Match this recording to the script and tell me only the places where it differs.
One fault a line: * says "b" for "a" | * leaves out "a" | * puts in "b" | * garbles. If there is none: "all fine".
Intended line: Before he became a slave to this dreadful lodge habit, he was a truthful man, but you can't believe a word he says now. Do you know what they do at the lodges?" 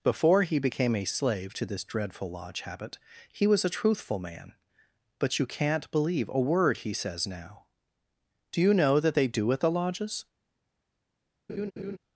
* says "that" for "what"